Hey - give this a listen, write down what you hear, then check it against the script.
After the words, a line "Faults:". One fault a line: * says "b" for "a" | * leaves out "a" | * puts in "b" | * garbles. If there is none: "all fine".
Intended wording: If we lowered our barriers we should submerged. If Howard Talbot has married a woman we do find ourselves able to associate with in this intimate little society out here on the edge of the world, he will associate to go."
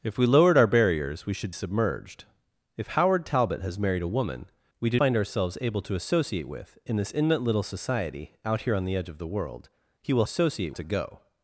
If we lowered our barriers we should submerged. If Howard Talbot has married a woman we do find ourselves able to associate with in this intimate little society out here on the edge of the world, he will associate to go."
Faults:
all fine